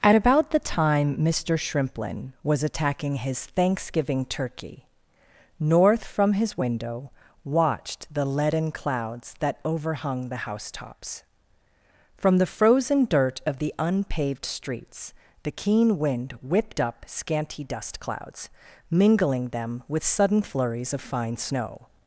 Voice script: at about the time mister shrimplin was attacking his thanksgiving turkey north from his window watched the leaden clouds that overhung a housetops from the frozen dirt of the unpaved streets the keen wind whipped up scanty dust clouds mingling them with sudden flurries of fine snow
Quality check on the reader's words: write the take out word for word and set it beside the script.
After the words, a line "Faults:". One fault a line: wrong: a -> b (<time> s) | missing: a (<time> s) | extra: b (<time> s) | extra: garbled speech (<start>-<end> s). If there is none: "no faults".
at about the time mister shrimplin was attacking his thanksgiving turkey north from his window watched the leaden clouds that overhung the housetops from the frozen dirt of the unpaved streets the keen wind whipped up scanty dust clouds mingling them with sudden flurries of fine snow
Faults:
wrong: a -> the (10.3 s)